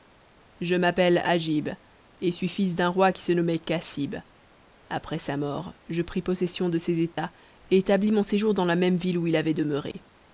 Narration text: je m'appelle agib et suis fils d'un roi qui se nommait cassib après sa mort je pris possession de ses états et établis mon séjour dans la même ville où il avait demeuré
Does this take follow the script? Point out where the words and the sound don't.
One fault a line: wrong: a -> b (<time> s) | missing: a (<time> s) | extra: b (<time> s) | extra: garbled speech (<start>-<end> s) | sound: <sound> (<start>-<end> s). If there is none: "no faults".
sound: dropout (7.1-7.2 s)
sound: dropout (9.9-9.9 s)